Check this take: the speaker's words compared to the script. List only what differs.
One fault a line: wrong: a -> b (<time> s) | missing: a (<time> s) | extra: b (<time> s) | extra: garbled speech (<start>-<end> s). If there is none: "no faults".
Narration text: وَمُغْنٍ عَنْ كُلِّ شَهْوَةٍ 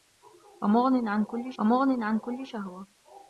extra: وَمُغْنٍ عَنْ كُلِّ (1.6 s)